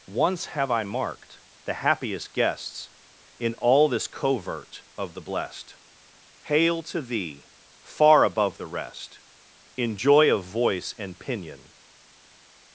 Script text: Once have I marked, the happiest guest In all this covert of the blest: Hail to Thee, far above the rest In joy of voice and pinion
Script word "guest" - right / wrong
wrong